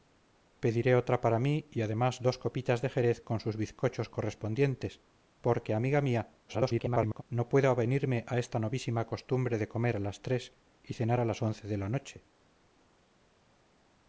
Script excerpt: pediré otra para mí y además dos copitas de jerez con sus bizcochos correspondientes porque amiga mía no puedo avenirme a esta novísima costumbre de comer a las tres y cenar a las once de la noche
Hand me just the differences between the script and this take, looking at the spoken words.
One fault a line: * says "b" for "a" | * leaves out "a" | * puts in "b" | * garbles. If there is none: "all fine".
* garbles